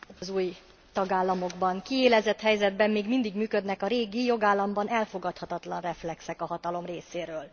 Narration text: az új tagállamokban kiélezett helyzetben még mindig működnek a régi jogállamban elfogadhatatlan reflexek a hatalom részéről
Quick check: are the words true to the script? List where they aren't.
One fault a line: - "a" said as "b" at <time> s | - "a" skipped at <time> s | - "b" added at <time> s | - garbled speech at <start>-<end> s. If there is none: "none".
none